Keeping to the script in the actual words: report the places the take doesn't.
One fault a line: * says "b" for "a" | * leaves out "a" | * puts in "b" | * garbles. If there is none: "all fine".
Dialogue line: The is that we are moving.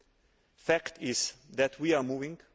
* puts in "fact"